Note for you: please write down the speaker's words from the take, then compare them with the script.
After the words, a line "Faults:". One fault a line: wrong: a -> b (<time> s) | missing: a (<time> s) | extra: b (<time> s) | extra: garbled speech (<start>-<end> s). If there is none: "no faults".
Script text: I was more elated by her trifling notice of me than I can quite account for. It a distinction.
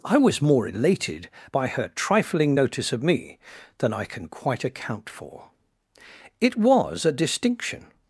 I was more elated by her trifling notice of me than I can quite account for. It was a distinction.
Faults:
extra: was (6.6 s)